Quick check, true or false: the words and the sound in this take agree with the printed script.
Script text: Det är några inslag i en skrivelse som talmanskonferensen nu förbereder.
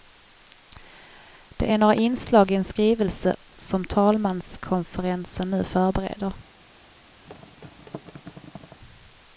false